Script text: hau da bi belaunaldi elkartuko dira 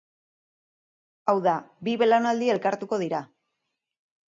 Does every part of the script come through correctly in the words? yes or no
yes